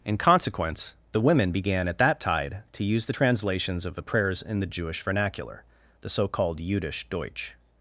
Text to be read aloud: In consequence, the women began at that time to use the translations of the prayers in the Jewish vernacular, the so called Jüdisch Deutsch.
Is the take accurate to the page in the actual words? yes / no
no